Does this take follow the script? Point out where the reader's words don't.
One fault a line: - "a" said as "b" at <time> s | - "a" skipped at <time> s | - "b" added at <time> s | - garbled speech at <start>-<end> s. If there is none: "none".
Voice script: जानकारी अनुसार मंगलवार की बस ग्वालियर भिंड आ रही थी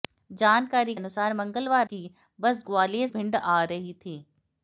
none